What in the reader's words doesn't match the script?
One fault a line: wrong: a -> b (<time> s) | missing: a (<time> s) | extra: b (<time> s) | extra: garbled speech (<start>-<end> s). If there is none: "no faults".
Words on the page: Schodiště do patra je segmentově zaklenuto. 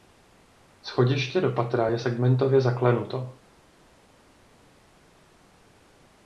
no faults